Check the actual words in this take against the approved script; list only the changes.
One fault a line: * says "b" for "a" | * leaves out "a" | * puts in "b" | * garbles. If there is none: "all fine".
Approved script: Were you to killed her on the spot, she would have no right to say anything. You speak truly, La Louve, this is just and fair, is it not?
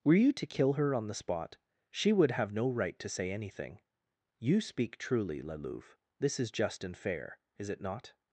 * says "kill" for "killed"